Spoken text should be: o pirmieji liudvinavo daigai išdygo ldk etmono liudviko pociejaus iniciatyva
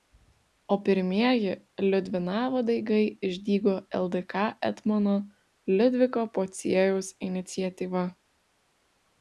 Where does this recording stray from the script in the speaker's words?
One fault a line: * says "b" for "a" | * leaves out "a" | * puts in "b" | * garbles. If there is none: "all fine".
all fine